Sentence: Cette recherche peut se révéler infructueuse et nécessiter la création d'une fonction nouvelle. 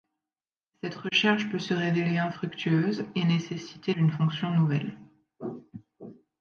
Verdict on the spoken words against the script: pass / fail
fail